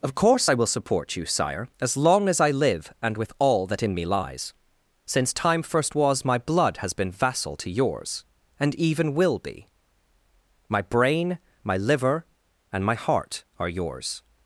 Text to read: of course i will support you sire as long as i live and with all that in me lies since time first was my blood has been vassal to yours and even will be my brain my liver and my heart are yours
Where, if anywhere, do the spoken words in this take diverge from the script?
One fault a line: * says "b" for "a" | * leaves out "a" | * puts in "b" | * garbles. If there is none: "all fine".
all fine